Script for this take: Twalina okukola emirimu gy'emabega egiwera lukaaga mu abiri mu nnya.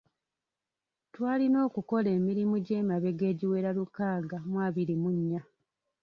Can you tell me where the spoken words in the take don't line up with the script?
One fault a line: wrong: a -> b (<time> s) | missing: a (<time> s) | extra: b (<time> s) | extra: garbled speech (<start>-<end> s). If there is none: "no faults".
no faults